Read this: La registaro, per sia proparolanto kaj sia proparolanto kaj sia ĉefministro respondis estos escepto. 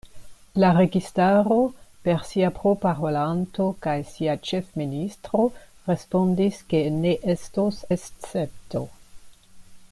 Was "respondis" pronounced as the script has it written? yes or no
no